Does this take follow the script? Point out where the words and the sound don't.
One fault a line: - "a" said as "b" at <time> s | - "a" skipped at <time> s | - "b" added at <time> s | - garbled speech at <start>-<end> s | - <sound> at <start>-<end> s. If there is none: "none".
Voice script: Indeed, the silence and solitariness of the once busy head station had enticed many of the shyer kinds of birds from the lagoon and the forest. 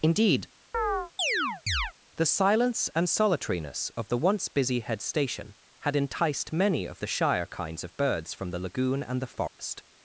- chirp at 0.7-1.9 s
- dropout at 9.5-9.6 s